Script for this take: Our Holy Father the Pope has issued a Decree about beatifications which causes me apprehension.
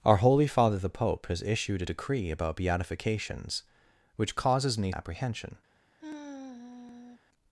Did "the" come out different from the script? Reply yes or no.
no